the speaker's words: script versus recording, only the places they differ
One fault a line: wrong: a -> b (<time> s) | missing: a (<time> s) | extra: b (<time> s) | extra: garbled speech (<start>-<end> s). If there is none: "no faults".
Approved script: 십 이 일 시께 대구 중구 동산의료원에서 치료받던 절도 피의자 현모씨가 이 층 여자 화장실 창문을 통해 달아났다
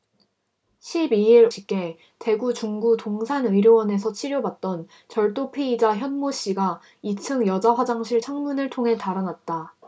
no faults